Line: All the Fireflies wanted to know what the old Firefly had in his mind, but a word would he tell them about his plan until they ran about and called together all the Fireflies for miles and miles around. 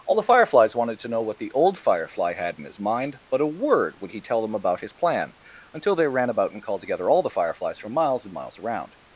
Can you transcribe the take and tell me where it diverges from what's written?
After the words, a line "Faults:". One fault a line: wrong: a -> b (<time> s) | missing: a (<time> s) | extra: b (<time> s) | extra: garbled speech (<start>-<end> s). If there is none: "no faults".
All the Fireflies wanted to know what the old Firefly had in his mind, but a word would he tell them about his plan until they ran about and called together all the Fireflies for miles and miles around.
Faults:
no faults